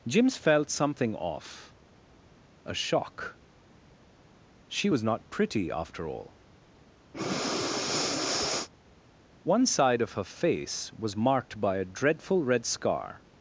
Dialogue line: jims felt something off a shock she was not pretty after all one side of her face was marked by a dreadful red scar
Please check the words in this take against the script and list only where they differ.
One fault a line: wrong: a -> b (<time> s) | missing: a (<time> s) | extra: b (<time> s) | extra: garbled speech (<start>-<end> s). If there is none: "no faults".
no faults